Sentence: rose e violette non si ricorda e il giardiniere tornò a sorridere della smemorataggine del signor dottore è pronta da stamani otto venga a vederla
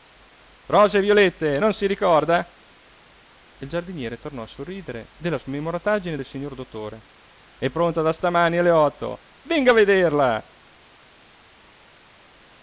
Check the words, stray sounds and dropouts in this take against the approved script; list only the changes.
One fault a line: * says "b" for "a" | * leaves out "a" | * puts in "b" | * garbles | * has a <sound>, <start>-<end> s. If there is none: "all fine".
* puts in "alle"